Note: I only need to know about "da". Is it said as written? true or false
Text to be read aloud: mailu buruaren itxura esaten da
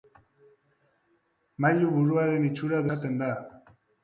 true